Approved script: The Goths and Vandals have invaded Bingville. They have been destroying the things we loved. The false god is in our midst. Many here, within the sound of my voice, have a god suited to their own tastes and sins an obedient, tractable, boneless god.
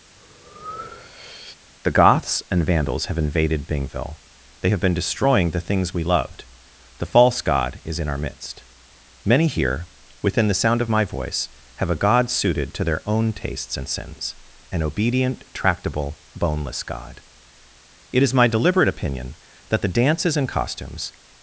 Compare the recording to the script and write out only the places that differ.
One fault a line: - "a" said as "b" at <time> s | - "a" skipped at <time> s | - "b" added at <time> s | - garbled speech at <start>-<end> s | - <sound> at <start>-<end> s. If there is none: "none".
- breath at 0.2-1.6 s
- "It is my deliberate opinion that the dances and costumes" added at 18.1 s